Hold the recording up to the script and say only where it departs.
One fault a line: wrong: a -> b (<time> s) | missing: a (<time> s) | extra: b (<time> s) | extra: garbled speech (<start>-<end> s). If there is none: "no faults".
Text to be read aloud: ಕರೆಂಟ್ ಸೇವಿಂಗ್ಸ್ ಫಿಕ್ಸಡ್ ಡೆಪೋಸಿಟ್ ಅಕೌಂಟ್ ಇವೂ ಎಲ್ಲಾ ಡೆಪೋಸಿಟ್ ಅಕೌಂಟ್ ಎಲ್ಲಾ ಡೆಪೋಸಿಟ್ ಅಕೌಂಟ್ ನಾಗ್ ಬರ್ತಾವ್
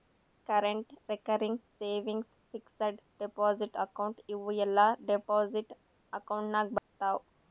extra: ರೆಕರಿಂಗ್ (1.1 s)
missing: ಎಲ್ಲಾ ಡೆಪೋಸಿಟ್ ಅಕೌಂಟ್ (6.5 s)